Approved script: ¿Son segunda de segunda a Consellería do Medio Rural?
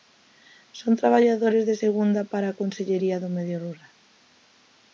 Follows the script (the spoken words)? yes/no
no